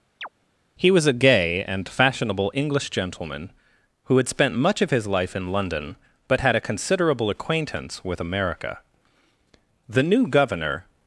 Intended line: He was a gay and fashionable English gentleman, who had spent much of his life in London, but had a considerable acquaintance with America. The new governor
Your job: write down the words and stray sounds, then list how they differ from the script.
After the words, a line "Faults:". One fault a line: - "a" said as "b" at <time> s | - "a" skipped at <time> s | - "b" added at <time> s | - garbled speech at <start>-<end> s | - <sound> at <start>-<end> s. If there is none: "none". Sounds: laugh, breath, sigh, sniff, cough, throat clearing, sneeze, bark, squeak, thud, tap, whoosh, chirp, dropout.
He was a gay and fashionable English gentleman, who had spent much of his life in London, but had a considerable acquaintance with America. The new governor
Faults:
- chirp at 0.2-0.3 s